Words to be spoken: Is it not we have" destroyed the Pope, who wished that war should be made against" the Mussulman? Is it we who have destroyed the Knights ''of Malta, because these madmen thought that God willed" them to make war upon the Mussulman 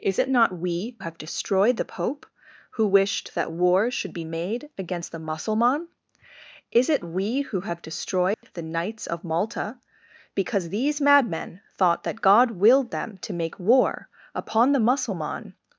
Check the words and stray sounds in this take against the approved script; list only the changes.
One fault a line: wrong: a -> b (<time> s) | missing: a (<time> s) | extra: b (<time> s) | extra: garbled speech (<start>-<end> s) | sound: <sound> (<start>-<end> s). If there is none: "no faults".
sound: dropout (8.3-8.4 s)